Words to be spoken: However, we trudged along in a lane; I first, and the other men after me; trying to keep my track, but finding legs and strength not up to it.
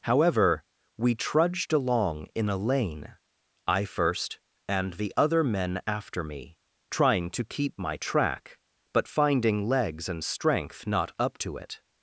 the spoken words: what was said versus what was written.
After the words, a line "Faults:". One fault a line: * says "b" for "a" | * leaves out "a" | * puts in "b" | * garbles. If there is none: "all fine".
However, we trudged along in a lane; I first, and the other men after me; trying to keep my track, but finding legs and strength not up to it.
Faults:
all fine